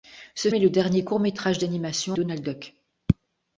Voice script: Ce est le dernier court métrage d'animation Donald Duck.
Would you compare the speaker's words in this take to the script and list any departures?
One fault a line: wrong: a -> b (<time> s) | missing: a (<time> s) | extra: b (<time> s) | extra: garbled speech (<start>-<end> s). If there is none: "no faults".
no faults